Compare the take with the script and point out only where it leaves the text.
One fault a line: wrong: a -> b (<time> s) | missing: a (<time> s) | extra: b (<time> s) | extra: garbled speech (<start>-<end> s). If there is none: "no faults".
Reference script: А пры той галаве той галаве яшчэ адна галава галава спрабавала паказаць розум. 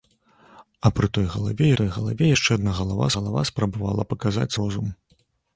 no faults